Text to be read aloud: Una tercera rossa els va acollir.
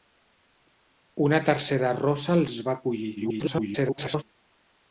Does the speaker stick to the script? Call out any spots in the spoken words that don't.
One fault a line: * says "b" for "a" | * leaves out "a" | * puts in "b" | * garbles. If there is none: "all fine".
* garbles